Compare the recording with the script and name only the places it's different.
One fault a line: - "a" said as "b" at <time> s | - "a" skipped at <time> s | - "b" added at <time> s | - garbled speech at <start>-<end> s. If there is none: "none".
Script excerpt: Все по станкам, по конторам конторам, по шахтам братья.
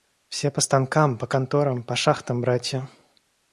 - "конторам" skipped at 1.8 s